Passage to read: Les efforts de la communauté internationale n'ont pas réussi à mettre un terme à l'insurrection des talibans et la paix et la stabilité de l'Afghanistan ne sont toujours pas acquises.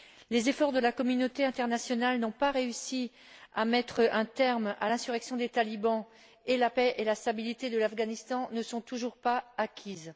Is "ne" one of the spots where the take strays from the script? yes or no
no